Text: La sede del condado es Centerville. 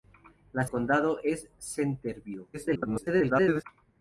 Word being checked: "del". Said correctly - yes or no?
no